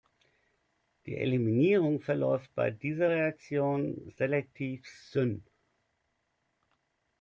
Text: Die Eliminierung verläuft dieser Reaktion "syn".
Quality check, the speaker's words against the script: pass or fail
fail